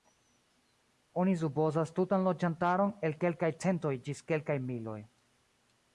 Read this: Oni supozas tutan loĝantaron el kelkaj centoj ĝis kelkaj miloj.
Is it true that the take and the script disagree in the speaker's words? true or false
false